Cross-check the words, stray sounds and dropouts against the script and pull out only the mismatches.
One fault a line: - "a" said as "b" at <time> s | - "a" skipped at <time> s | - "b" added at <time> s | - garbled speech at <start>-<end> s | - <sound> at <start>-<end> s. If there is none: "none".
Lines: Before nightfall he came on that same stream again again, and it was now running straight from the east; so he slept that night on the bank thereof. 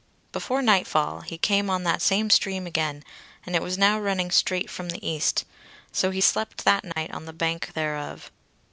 - "again" skipped at 3.0 s
- dropout at 6.9-7.0 s